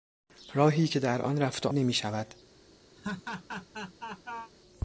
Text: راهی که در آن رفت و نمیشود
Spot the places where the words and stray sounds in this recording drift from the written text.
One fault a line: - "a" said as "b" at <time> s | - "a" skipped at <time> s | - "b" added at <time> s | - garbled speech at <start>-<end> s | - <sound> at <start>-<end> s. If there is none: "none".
- laugh at 3.0-4.5 s